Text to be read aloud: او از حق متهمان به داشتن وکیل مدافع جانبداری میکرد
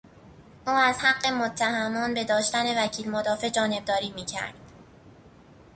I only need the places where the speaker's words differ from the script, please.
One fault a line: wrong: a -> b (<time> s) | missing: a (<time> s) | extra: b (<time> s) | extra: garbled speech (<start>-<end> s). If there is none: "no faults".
no faults